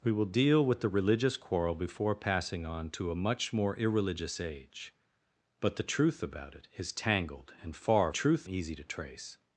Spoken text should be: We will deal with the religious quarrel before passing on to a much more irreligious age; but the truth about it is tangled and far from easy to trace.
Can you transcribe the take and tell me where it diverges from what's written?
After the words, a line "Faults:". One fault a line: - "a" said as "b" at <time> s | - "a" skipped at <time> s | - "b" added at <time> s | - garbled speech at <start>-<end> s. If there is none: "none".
We will deal with the religious quarrel before passing on to a much more irreligious age; but the truth about it is tangled and far truth easy to trace.
Faults:
- "from" said as "truth" at 8.1 s